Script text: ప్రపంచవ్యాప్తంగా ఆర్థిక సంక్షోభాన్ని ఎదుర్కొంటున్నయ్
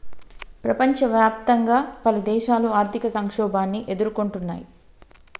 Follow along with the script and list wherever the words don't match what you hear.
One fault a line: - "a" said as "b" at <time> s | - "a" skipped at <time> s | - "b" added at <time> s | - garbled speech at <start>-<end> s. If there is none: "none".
- "పలుదేశాలు" added at 2.1 s